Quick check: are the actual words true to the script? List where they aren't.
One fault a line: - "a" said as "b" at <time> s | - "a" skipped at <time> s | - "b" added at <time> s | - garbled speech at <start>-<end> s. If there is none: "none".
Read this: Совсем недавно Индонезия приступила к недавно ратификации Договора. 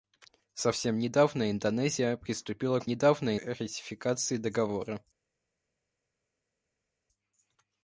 none